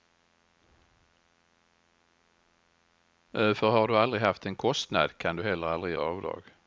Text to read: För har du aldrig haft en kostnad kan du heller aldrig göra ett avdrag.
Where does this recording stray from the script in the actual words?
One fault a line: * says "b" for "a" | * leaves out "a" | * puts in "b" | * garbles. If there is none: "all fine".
* leaves out "göra ett"